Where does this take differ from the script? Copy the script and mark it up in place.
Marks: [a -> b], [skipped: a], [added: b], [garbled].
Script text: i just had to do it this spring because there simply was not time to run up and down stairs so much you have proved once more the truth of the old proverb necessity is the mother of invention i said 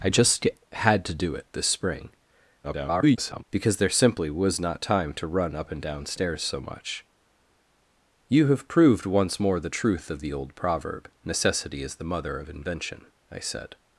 i just had to do it this spring [garbled] because there simply was not time to run up and down stairs so much you have proved once more the truth of the old proverb necessity is the mother of invention i said